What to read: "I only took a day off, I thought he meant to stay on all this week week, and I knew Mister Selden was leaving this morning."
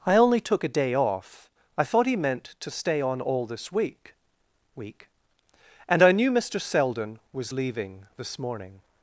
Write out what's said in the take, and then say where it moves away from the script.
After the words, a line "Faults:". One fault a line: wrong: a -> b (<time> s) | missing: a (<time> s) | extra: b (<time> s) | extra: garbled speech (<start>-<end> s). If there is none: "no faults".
"I only took a day off, I thought he meant to stay on all this week week, and I knew Mister Selden was leaving this morning."
Faults:
no faults